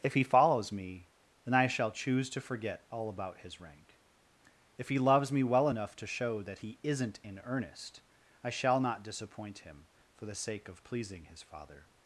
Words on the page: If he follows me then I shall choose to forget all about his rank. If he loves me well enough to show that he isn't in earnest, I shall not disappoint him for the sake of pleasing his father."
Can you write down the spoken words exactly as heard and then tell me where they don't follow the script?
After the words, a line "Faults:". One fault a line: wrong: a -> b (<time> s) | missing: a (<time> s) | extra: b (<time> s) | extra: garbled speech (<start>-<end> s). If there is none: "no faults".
If he follows me then I shall choose to forget all about his rank. If he loves me well enough to show that he isn't in earnest, I shall not disappoint him for the sake of pleasing his father."
Faults:
no faults